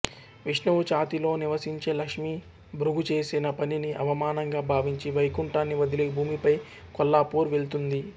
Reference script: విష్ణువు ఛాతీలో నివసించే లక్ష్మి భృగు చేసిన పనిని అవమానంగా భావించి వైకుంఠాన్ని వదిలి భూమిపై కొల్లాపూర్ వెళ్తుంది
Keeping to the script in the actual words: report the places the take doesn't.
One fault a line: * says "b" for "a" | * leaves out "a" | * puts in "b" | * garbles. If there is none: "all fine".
all fine